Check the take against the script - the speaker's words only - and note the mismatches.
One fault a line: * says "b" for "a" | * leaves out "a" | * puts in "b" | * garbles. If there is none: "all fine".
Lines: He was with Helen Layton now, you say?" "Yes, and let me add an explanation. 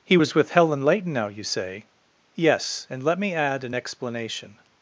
all fine